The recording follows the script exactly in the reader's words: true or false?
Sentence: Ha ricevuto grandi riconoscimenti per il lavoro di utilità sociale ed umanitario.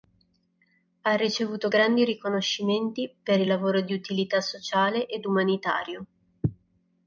true